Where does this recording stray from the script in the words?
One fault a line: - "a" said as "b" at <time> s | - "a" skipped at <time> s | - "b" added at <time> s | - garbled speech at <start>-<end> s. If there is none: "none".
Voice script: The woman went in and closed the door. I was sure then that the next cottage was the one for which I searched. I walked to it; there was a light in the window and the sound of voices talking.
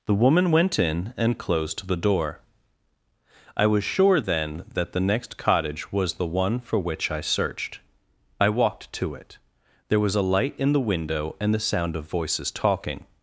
none